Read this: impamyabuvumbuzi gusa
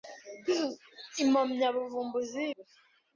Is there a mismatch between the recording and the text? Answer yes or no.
no